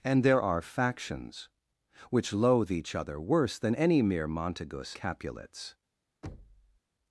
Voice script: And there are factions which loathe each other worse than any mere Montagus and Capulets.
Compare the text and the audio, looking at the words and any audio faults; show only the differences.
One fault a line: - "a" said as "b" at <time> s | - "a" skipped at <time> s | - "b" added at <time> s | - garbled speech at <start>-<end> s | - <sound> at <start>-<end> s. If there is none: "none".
- "and" skipped at 5.0 s
- thud at 6.2-6.8 s